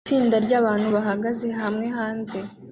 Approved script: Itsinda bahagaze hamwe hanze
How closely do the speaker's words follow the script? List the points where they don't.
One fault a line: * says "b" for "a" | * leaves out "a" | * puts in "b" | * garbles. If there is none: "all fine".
* puts in "ryabantu"